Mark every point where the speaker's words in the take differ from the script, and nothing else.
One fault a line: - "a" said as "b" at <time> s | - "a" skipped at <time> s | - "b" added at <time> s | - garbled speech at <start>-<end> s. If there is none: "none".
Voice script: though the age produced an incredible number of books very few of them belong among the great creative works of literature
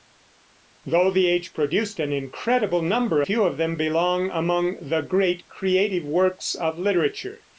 - "of books very" skipped at 3.2 s